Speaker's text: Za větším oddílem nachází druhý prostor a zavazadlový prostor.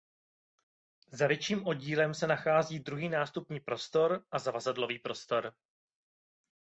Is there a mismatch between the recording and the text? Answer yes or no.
yes